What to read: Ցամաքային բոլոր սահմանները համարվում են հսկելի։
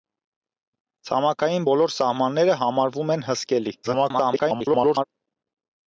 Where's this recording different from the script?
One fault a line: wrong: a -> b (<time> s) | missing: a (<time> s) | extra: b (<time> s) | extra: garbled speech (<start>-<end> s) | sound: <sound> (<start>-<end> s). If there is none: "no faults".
extra: garbled speech (3.8-5.0 s)